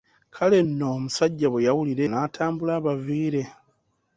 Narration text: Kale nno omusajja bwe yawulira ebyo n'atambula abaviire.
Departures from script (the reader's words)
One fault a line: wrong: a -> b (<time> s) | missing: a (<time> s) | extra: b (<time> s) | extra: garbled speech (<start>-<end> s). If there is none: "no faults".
missing: ebyo (2.0 s)